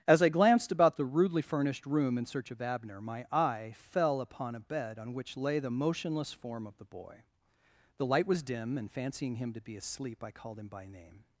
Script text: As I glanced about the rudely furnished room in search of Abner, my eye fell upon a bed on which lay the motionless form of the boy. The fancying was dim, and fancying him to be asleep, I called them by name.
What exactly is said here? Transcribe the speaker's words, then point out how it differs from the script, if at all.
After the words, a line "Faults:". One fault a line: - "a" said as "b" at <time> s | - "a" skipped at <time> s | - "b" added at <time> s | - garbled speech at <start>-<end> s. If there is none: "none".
As I glanced about the rudely furnished room in search of Abner, my eye fell upon a bed on which lay the motionless form of the boy. The light was dim, and fancying him to be asleep, I called him by name.
Faults:
- "fancying" said as "light" at 8.1 s
- "them" said as "him" at 10.6 s